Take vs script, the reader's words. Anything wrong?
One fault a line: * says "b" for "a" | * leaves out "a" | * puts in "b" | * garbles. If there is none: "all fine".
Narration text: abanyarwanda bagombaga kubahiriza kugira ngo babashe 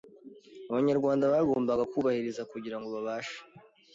all fine